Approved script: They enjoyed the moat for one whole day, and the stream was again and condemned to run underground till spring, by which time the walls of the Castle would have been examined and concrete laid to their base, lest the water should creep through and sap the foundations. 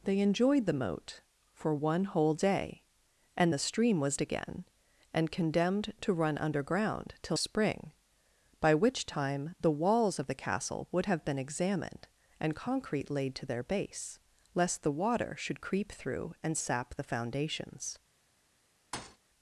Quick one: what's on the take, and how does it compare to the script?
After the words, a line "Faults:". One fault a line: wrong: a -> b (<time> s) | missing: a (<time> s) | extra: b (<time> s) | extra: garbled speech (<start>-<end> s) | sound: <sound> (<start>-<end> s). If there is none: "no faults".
They enjoyed the moat for one whole day, and the stream was again and condemned to run underground till spring, by which time the walls of the Castle would have been examined and concrete laid to their base, lest the water should creep through and sap the foundations.
Faults:
sound: thud (18.9-19.2 s)